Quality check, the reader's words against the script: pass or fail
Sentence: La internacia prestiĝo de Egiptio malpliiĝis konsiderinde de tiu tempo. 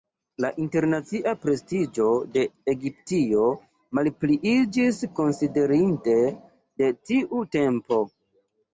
pass